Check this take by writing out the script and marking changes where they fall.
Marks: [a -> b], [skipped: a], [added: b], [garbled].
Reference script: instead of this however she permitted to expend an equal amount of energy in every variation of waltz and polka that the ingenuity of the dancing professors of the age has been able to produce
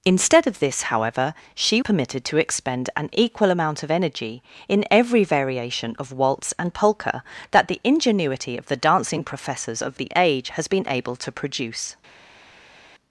instead of this however she permitted to expend an equal amount of energy in every variation of waltz and polka that the ingenuity of the dancing professors of the age has been able to produce